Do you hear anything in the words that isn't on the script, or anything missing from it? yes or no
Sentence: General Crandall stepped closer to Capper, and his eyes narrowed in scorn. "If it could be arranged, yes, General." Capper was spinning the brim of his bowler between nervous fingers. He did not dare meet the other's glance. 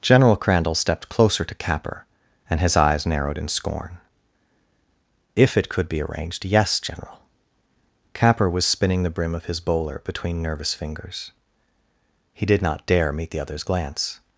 no